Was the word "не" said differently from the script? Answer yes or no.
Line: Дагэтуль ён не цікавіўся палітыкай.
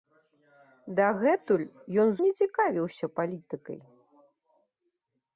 no